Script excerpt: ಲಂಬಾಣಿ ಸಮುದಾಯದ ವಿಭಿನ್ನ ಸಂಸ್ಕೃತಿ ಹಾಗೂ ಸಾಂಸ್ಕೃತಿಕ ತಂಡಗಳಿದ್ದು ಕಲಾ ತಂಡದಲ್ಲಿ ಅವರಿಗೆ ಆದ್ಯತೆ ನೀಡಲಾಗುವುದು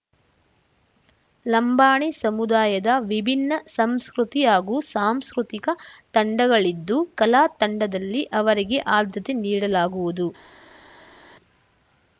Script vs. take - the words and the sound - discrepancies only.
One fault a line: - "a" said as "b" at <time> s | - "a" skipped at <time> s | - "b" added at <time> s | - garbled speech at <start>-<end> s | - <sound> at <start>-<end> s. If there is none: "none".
none